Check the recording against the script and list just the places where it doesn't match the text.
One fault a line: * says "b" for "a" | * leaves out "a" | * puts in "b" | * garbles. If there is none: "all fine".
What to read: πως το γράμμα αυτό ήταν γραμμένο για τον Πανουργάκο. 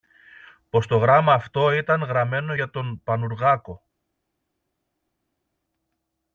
all fine